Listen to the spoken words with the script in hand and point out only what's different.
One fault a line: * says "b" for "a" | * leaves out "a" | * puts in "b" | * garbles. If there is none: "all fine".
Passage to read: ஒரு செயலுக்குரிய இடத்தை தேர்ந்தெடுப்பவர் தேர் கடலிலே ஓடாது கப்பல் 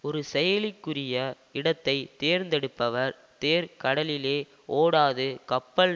all fine